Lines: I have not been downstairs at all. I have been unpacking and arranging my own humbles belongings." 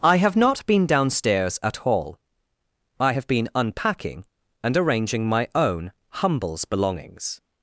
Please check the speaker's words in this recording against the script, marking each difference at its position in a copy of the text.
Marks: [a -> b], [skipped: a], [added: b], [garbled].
I have not been downstairs at all. I have been unpacking and arranging my own humbles belongings."